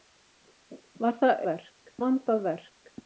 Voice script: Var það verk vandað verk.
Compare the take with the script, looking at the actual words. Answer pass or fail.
pass